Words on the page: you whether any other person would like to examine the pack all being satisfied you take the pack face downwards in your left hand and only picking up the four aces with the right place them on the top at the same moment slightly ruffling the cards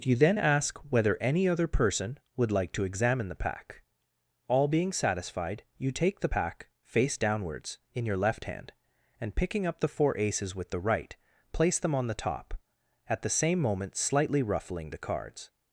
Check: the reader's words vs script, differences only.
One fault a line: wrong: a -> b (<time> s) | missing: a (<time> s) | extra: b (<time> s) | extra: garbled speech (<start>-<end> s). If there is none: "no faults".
extra: then ask (0.1 s)
missing: only (9.4 s)